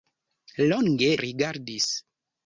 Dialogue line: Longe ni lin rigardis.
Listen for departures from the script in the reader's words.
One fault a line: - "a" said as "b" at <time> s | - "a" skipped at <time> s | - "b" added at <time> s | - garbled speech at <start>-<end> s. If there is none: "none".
- "ni lin" skipped at 1.1 s